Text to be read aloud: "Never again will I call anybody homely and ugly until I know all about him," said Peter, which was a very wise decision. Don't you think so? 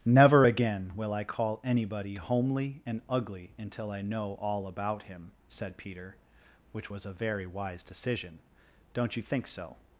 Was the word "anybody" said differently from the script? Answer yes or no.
no